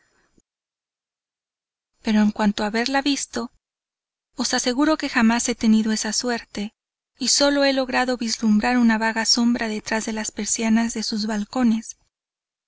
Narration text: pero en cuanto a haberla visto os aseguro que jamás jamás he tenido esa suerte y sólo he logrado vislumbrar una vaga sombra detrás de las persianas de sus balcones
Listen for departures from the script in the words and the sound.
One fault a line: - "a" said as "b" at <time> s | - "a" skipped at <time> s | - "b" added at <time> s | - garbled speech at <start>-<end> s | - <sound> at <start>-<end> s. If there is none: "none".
- "jamás" skipped at 5.5 s